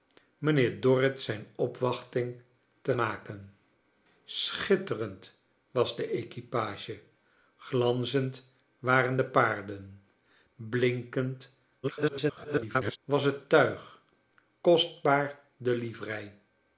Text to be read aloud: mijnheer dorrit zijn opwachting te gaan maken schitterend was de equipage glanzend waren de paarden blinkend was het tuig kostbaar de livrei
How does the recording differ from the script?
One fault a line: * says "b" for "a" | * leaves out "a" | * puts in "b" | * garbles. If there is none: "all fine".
* leaves out "gaan"
* garbles